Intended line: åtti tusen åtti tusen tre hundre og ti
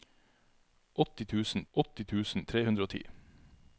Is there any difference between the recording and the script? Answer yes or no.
no